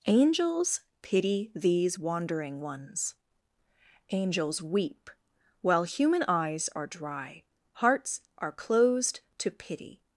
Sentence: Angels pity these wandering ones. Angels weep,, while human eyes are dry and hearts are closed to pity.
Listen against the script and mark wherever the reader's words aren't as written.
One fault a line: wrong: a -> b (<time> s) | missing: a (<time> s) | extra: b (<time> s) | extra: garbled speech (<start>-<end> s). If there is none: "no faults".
missing: and (7.4 s)